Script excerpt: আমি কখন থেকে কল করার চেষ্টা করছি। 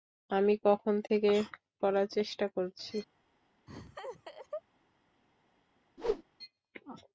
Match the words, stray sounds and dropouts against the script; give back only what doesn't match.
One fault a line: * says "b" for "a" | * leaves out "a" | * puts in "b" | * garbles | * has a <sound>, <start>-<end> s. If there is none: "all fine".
* leaves out "কল"
* has a laugh, 3.7-4.6 s
* has a whoosh, 6.0-6.2 s